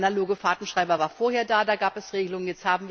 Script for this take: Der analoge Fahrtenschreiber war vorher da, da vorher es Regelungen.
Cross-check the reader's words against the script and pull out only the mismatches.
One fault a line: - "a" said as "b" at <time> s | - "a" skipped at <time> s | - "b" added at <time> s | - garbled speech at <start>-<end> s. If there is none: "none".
- "vorher" said as "gab" at 1.8 s